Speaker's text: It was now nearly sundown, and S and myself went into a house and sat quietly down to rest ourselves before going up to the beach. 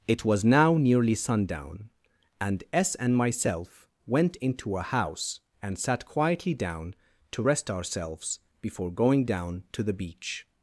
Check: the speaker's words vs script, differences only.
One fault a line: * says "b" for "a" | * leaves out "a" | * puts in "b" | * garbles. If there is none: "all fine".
* says "down" for "up"